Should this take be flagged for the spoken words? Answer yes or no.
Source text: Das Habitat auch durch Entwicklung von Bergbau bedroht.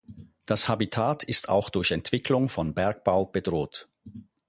yes